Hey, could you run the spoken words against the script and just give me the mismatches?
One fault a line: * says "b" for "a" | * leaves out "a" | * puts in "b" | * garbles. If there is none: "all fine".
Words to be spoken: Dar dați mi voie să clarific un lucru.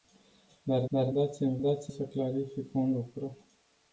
* puts in "dar"
* says "dați" for "voie"